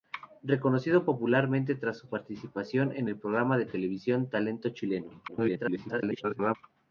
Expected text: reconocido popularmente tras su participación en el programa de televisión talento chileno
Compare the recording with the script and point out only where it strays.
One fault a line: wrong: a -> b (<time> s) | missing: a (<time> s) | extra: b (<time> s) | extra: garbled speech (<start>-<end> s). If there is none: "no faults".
extra: garbled speech (5.3-6.6 s)